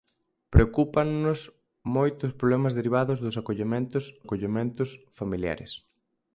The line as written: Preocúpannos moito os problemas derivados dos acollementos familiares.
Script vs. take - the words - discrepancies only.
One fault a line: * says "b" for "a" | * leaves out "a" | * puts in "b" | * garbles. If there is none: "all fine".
* puts in "acollementos"